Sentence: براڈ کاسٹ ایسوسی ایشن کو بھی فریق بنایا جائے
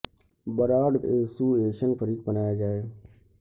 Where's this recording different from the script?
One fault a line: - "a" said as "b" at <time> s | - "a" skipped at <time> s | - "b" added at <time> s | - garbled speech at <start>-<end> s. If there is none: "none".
- "کاسٹ" skipped at 1.0 s
- "کو بھی" skipped at 1.9 s